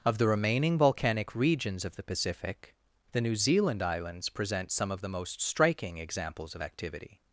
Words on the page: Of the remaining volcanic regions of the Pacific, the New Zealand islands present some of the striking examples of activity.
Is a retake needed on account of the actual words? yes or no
yes